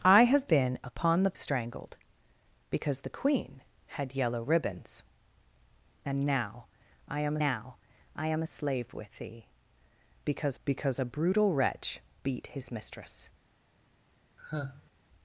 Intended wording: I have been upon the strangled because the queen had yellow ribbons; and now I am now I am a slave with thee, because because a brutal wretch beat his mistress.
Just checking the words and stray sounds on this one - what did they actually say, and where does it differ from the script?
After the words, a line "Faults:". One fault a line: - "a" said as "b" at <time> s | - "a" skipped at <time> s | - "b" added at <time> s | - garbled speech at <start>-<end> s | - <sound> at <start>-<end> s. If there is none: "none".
I have been upon the strangled because the queen had yellow ribbons; and now I am now I am a slave with thee, because because a brutal wretch beat his mistress.
Faults:
- sigh at 14.4-14.9 s